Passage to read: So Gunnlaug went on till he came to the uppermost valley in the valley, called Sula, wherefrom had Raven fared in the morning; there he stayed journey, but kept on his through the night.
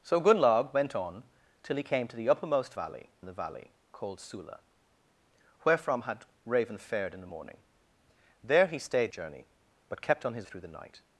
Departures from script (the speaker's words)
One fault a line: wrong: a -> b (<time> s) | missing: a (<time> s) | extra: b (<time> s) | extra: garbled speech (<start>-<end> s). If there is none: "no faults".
no faults